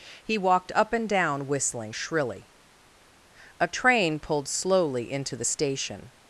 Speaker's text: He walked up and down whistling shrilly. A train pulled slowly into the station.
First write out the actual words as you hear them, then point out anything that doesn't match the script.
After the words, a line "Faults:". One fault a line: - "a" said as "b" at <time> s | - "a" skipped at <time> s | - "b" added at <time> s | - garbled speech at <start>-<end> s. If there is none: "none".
He walked up and down whistling shrilly. A train pulled slowly into the station.
Faults:
none